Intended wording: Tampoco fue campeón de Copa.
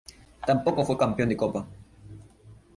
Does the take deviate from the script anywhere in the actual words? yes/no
no